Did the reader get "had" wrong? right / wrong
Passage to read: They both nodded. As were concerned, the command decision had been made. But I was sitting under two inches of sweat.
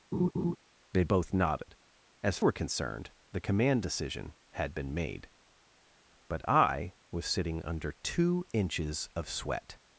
right